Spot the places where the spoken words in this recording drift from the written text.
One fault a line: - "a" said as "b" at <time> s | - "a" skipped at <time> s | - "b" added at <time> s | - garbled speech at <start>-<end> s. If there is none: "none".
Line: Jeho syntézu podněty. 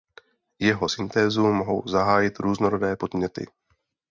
- "mohou zahájit různorodé" added at 1.5 s